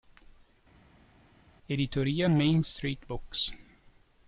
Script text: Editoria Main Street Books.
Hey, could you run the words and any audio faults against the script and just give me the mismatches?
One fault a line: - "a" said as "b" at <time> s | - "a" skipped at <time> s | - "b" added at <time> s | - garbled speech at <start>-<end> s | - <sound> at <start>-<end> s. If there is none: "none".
none